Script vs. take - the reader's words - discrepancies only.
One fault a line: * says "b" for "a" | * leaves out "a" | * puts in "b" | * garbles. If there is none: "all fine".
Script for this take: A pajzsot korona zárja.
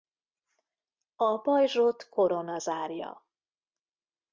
all fine